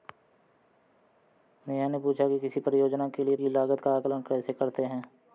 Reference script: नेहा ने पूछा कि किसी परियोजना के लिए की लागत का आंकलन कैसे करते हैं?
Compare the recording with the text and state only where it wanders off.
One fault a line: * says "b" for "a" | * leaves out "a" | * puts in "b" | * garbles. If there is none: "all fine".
all fine